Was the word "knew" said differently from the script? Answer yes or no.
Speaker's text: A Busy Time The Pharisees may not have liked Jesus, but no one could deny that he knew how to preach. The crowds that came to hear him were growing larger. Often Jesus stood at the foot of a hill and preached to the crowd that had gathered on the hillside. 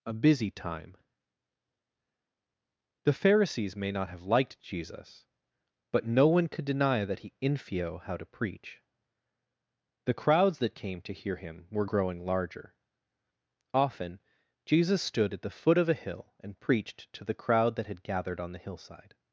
yes